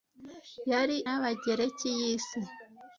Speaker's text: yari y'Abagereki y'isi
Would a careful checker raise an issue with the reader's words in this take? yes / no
no